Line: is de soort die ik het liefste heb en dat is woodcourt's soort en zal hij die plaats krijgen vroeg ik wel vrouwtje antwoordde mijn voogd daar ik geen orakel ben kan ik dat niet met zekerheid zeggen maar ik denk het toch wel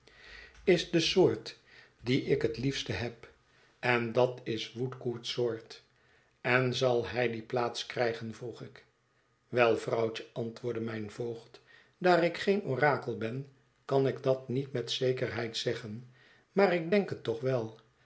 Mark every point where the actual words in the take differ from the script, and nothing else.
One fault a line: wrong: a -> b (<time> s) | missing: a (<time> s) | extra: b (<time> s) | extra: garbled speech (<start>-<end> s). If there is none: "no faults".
no faults